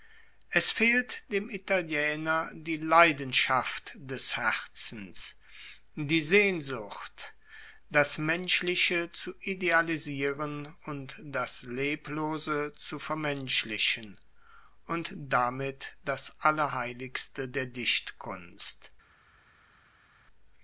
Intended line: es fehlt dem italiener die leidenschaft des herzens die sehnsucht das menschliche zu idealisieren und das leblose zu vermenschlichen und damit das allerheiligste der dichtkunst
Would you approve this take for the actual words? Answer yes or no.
yes